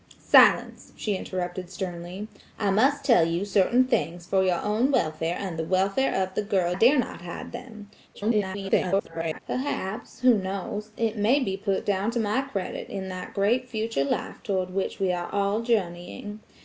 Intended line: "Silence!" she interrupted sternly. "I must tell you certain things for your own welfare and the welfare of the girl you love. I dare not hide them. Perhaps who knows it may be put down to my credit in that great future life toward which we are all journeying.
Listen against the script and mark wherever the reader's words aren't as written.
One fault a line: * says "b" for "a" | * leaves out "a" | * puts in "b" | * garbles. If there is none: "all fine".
* leaves out "you love I"
* garbles